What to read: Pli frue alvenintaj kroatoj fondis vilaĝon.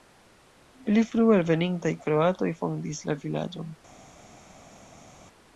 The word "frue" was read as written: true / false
true